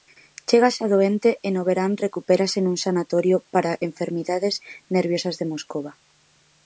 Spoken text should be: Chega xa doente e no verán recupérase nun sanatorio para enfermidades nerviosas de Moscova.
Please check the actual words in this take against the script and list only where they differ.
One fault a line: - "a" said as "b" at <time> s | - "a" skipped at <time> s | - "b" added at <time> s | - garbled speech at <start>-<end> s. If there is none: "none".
none